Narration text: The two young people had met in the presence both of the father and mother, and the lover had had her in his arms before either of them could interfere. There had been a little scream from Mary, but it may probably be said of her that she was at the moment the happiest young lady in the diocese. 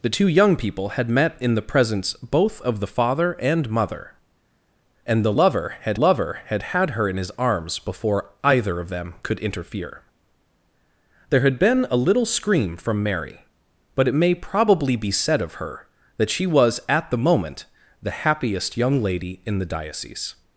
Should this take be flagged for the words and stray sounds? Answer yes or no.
yes